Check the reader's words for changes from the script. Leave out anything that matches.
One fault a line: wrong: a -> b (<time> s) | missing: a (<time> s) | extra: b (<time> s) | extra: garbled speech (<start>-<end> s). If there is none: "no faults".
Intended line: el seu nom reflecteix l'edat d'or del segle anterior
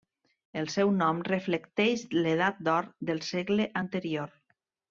no faults